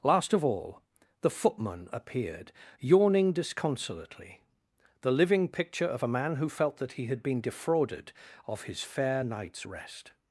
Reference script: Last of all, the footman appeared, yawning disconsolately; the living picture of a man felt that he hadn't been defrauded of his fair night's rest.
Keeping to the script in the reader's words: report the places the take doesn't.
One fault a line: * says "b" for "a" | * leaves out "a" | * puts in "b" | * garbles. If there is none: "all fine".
* puts in "who"
* says "had" for "hadn't"